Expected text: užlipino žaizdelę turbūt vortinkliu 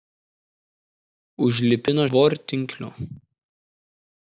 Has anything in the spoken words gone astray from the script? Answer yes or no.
yes